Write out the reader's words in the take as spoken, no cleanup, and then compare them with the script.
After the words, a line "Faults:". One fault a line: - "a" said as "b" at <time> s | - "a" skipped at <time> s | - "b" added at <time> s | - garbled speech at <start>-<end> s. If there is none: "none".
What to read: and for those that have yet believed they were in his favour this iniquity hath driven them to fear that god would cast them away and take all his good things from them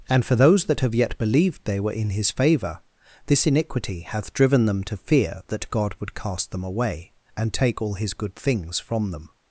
and for those that have yet believed they were in his favour this iniquity hath driven them to fear that god would cast them away and take all his good things from them
Faults:
none